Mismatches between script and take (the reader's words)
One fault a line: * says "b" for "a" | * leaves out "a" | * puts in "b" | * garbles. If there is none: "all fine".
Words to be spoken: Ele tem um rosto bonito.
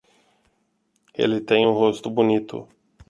all fine